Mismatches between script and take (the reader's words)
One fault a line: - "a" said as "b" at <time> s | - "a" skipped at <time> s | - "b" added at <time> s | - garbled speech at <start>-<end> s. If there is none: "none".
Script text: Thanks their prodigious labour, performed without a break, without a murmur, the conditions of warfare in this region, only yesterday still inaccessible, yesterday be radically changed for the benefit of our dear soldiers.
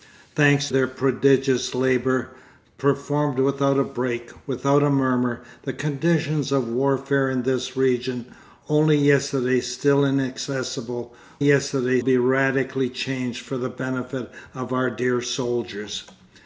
none